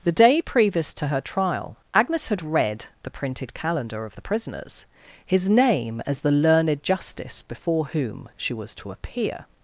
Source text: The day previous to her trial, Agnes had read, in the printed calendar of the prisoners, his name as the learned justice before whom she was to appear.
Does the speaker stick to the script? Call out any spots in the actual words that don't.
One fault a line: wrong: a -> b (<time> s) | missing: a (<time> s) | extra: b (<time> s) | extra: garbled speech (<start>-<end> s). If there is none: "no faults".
missing: in (2.9 s)